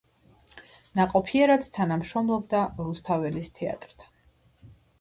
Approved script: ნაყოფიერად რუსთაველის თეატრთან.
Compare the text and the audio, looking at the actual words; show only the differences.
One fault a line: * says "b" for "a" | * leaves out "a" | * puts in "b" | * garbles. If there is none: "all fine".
* puts in "თანამშრომლობდა"